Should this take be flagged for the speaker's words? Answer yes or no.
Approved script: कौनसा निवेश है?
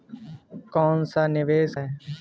no